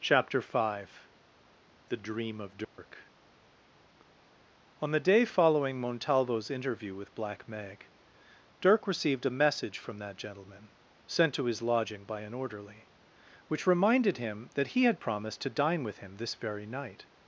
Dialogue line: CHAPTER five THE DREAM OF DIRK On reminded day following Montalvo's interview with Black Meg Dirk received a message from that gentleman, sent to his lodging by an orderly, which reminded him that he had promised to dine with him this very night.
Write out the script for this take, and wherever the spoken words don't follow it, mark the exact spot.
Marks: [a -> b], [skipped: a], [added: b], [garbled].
CHAPTER five THE DREAM OF DIRK On [reminded -> the] day following Montalvo's interview with Black Meg Dirk received a message from that gentleman, sent to his lodging by an orderly, which reminded him that he had promised to dine with him this very night.